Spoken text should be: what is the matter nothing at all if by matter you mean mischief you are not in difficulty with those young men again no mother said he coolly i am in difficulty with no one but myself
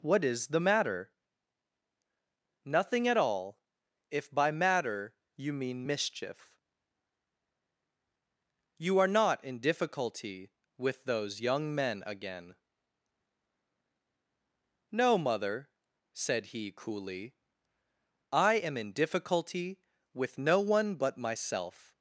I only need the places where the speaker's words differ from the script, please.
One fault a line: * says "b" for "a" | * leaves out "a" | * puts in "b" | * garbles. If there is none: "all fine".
all fine